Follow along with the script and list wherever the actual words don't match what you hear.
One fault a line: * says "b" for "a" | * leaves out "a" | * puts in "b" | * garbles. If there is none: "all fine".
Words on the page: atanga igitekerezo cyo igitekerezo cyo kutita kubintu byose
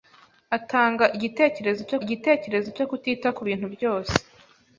all fine